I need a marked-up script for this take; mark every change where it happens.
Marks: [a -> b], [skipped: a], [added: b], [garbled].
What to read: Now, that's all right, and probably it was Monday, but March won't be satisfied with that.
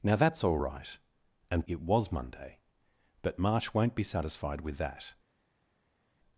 Now, that's all right, and [skipped: probably] it was Monday, but March won't be satisfied with that.